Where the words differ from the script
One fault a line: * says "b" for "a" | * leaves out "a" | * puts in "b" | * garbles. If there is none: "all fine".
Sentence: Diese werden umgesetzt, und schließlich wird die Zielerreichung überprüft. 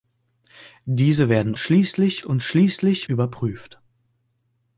* says "schließlich" for "umgesetzt"
* leaves out "wird die Zielerreichung"